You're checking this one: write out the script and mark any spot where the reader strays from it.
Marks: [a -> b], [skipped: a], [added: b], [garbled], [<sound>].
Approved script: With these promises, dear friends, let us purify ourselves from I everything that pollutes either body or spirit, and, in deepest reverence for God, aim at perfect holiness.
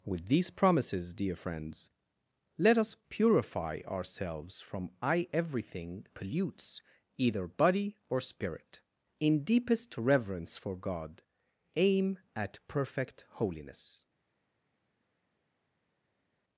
With these promises, dear friends, let us purify ourselves from I everything [skipped: that] pollutes either body or spirit, [skipped: and,] in deepest reverence for God, aim at perfect holiness.